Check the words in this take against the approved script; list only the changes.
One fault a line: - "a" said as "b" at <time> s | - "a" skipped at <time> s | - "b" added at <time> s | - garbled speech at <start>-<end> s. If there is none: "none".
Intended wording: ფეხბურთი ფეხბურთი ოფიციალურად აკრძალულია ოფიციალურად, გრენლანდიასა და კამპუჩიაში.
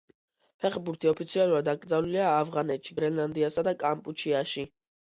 - "ფეხბურთი" skipped at 1.1 s
- "ოფიციალურად" said as "ავღანეთში" at 2.4 s